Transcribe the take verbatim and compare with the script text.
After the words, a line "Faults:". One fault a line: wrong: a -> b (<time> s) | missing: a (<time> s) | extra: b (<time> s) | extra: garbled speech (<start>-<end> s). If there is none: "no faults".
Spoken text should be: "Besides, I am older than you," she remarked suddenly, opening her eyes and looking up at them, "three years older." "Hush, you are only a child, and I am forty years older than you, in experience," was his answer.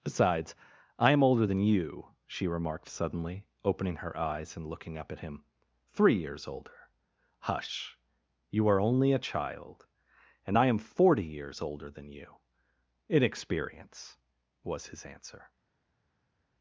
"Besides, I am older than you," she remarked suddenly, opening her eyes and looking up at him, "three years older." "Hush, you are only a child, and I am forty years older than you, in experience," was his answer.
Faults:
wrong: them -> him (5.2 s)